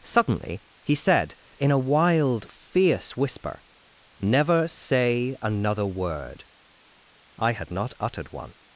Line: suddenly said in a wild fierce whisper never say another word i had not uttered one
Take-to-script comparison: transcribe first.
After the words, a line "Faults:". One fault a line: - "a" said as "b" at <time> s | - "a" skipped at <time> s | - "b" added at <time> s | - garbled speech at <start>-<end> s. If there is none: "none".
suddenly he said in a wild fierce whisper never say another word i had not uttered one
Faults:
- "he" added at 0.8 s